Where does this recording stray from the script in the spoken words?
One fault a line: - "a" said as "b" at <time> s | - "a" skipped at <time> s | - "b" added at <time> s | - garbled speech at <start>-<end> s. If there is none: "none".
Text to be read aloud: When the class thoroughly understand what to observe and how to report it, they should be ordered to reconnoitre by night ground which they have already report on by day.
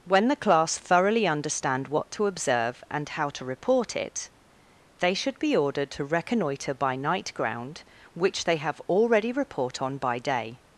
none